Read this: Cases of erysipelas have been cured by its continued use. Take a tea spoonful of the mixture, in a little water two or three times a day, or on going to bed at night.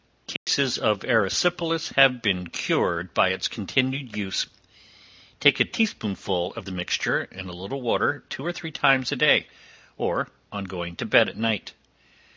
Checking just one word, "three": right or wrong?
right